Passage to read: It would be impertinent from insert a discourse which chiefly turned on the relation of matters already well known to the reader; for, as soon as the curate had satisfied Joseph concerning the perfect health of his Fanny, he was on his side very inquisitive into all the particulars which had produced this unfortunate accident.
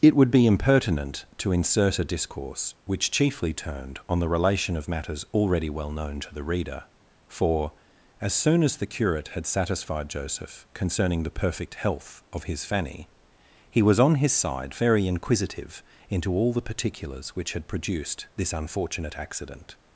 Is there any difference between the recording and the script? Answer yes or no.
yes